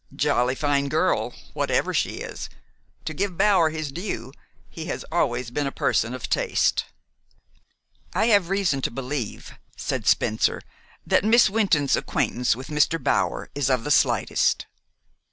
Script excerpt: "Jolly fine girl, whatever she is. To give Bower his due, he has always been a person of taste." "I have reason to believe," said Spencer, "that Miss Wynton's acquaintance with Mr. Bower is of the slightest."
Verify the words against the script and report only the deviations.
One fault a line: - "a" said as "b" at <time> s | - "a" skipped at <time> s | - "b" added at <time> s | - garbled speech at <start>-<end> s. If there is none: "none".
none